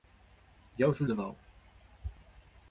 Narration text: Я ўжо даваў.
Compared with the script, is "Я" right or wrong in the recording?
right